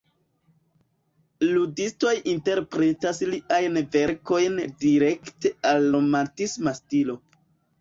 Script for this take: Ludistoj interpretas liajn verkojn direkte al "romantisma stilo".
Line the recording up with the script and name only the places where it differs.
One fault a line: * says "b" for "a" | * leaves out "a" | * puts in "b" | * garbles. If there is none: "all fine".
all fine